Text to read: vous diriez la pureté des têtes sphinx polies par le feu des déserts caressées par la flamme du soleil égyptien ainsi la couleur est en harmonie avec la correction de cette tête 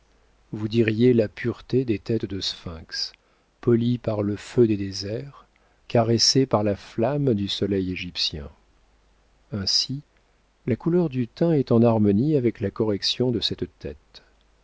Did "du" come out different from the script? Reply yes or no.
no